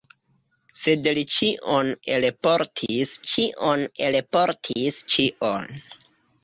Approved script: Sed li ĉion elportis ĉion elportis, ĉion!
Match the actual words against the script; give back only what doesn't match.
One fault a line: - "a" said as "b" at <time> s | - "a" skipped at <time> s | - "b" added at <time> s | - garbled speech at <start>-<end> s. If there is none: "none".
none